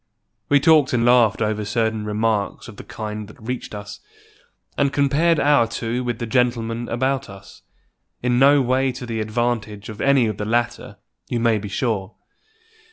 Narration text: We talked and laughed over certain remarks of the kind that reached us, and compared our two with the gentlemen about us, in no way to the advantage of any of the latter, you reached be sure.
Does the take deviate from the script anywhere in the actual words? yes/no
yes